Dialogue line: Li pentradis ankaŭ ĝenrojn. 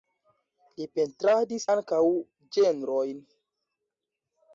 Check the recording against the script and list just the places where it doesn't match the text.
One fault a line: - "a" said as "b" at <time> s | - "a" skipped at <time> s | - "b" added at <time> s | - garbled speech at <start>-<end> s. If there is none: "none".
none